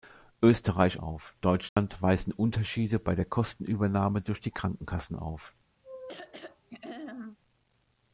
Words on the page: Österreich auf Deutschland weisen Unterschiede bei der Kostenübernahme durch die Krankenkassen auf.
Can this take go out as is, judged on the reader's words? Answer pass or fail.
pass